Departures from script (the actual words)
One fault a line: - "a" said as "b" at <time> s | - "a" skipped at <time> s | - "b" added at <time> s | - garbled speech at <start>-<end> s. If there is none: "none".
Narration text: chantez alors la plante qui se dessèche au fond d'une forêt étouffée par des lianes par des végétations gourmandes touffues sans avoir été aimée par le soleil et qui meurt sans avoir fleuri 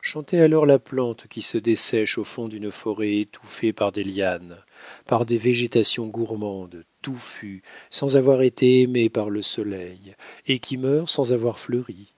none